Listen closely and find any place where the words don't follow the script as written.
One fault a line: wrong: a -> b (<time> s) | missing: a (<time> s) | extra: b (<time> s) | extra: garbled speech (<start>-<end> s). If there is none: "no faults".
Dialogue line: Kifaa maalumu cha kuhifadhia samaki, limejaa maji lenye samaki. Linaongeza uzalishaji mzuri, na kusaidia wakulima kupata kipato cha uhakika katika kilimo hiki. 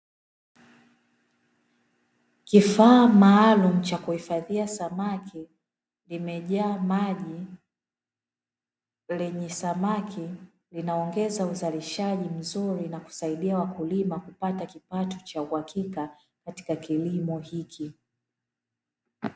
no faults